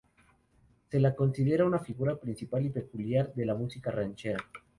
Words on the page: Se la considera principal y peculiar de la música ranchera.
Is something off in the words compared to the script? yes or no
yes